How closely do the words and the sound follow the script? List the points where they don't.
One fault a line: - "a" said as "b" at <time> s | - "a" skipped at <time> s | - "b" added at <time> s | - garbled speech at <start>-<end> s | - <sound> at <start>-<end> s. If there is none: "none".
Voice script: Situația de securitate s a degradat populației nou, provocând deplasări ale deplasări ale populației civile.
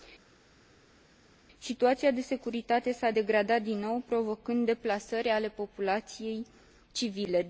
- "populației" said as "din" at 3.6 s
- "deplasări ale" skipped at 5.5 s